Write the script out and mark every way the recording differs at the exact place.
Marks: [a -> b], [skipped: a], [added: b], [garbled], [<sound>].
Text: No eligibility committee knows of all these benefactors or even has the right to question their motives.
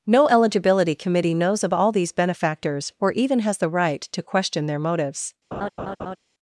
No eligibility committee knows of all these benefactors or even has the right to question their motives. [laugh]